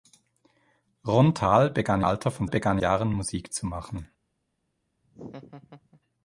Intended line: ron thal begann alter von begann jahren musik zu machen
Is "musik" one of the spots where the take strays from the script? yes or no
no